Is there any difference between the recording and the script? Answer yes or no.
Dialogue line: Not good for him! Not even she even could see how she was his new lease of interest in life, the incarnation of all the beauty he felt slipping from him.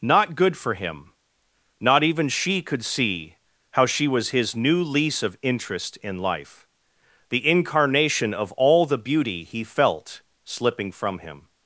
yes